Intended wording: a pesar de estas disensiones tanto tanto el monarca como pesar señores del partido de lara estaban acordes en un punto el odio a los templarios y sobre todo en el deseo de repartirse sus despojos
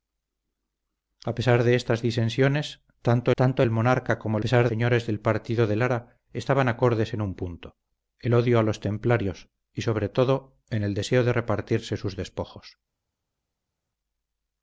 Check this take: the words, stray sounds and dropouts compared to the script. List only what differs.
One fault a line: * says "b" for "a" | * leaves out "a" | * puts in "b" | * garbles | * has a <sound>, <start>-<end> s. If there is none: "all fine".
all fine